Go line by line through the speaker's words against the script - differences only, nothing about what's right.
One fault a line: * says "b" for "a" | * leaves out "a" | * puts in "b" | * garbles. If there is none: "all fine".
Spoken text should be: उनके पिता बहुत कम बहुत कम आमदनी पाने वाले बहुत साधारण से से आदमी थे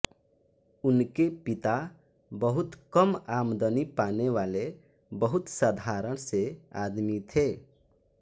* leaves out "बहुत कम"
* leaves out "से"